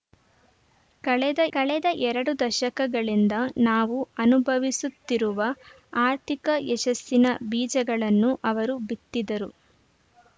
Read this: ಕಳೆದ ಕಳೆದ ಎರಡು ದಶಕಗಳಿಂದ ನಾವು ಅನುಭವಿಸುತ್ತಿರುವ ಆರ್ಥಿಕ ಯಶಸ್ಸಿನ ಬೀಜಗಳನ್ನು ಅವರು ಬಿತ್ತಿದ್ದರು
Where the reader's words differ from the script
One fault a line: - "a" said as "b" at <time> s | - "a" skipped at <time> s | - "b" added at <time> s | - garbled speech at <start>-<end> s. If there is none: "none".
none